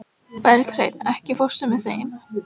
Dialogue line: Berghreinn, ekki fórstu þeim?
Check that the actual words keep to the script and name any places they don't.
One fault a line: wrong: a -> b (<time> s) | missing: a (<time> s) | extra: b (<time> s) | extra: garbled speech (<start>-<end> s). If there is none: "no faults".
extra: með (1.7 s)